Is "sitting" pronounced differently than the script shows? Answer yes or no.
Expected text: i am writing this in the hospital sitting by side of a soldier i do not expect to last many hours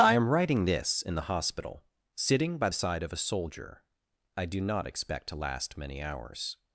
no